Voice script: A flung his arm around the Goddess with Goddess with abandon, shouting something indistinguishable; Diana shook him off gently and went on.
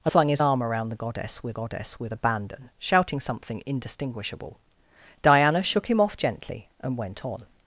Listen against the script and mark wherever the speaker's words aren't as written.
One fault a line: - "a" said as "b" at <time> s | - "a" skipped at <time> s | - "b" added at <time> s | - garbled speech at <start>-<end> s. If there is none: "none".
none